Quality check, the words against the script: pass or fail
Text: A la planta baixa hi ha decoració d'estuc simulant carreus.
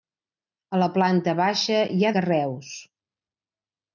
fail